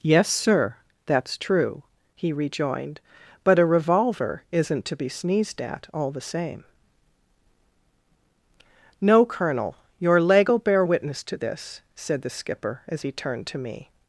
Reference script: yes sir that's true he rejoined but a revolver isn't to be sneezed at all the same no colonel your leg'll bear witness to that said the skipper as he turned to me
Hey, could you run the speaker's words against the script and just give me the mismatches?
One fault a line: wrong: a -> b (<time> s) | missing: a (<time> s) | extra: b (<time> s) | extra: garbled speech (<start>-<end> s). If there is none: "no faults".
wrong: that -> this (11.4 s)